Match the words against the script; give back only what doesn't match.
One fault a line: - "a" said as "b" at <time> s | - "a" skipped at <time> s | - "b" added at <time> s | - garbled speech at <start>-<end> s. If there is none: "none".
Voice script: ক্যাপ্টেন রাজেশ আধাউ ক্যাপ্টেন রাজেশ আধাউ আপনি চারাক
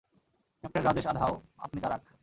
- "ক্যাপ্টেন রাজেশ আধাউ" skipped at 1.3 s